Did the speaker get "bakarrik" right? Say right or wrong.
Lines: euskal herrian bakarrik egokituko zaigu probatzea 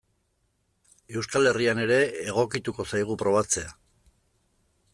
wrong